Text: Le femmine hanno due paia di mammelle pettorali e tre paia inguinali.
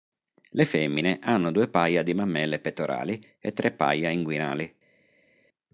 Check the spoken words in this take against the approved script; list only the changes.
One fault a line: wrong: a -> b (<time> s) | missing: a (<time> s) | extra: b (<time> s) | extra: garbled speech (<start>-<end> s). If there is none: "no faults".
no faults